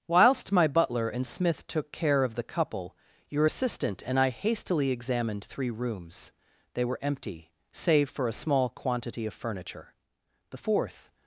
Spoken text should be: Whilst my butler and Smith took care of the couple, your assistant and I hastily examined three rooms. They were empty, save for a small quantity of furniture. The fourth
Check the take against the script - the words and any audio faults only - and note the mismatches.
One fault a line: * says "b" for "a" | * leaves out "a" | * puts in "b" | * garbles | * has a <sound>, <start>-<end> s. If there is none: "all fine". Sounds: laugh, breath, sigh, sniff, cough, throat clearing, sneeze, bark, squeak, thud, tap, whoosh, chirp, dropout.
all fine